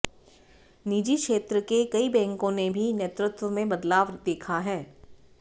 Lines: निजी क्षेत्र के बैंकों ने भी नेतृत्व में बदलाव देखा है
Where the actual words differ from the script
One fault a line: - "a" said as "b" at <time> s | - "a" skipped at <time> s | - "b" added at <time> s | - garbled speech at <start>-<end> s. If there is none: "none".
- "कई" added at 1.9 s